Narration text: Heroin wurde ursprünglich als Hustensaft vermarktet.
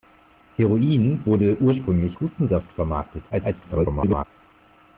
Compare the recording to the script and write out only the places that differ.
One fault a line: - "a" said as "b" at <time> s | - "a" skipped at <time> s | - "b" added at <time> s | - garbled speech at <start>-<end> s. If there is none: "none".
- "als" skipped at 2.2 s
- garbled speech at 3.3-4.3 s